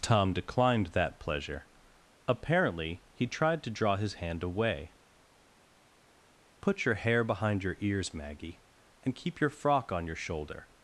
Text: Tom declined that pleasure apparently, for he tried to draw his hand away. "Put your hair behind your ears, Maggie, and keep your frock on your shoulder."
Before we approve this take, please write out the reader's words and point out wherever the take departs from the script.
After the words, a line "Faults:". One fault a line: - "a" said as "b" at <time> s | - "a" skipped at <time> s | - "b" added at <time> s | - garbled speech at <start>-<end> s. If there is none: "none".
Tom declined that pleasure apparently, he tried to draw his hand away. "Put your hair behind your ears, Maggie, and keep your frock on your shoulder."
Faults:
- "for" skipped at 3.0 s